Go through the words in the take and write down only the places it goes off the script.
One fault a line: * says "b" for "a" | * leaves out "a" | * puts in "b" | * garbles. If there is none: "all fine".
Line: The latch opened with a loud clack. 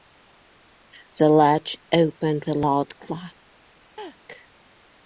* leaves out "with"